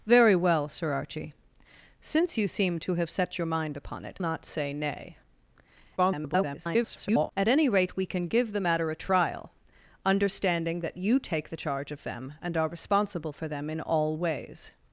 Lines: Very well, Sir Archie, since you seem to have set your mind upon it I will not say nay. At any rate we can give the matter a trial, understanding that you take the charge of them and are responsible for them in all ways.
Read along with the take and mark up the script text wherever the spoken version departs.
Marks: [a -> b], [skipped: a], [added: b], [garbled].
Very well, Sir Archie, since you seem to have set your mind upon it [skipped: I will] not say nay. [garbled] At any rate we can give the matter a trial, understanding that you take the charge of them and are responsible for them in all ways.